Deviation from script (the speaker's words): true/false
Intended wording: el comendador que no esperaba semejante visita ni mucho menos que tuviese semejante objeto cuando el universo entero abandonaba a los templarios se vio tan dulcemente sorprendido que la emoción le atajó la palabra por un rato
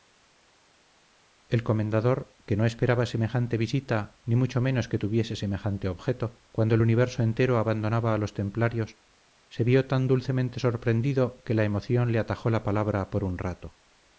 false